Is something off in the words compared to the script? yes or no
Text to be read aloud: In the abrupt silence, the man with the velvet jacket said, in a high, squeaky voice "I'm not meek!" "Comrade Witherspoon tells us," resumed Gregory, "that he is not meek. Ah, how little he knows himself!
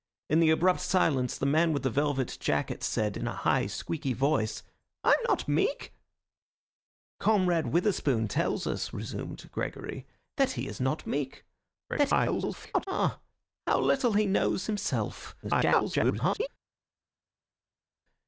yes